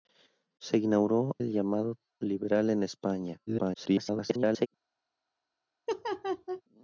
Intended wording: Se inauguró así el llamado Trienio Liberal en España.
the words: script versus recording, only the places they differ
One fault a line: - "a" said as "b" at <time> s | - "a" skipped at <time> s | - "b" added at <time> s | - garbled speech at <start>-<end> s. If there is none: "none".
- "así" skipped at 1.4 s
- "Trienio" skipped at 2.0 s
- garbled speech at 3.5-4.7 s